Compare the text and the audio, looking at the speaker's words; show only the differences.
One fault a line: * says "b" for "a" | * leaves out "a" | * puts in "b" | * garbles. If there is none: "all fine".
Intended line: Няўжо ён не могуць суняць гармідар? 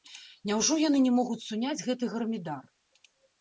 * says "яны" for "ён"
* puts in "гэты"